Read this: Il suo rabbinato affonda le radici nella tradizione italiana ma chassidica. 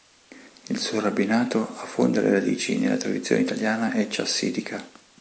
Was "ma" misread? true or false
true